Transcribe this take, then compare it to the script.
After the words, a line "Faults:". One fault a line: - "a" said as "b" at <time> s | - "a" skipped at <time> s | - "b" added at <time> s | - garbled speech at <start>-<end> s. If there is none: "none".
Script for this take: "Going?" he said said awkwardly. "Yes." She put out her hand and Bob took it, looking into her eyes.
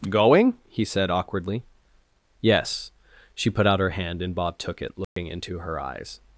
"Going?" he said awkwardly. "Yes." She put out her hand and Bob took it, looking into her eyes.
Faults:
- "said" skipped at 1.1 s